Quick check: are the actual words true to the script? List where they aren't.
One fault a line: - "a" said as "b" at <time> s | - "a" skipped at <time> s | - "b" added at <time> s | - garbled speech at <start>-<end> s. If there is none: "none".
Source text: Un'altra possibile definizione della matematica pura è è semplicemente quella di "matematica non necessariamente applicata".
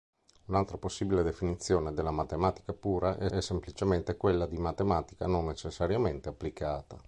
none